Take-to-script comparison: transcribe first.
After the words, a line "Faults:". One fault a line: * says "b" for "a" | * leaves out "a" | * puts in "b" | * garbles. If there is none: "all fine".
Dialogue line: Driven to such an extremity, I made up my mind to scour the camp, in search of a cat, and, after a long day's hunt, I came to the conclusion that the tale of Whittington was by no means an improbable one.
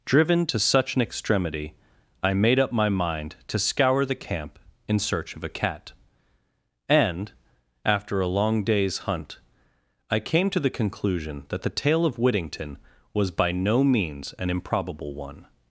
Driven to such an extremity, I made up my mind to scour the camp, in search of a cat, and, after a long day's hunt, I came to the conclusion that the tale of Whittington was by no means an improbable one.
Faults:
all fine